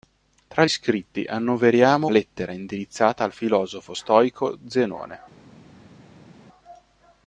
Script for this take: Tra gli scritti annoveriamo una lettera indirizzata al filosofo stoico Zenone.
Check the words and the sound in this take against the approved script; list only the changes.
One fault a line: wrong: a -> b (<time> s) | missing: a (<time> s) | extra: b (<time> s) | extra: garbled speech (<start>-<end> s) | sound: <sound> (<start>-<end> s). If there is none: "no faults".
missing: gli (0.7 s)
missing: una (2.1 s)